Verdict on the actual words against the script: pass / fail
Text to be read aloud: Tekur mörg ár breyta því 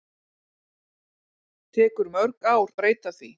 pass